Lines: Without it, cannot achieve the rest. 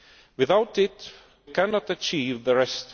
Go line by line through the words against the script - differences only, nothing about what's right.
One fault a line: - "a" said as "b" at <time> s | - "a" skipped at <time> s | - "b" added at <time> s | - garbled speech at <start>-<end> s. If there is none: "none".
none